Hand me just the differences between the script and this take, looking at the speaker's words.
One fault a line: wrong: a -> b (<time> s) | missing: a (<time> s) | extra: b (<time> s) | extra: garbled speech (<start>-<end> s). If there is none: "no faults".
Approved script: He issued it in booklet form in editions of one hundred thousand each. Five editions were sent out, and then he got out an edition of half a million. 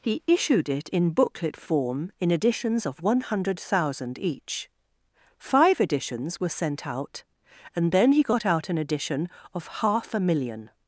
no faults